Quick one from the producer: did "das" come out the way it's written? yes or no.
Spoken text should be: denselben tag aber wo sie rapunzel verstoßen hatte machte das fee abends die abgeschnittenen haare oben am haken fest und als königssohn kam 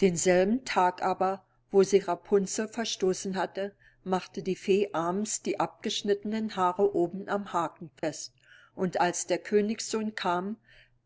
no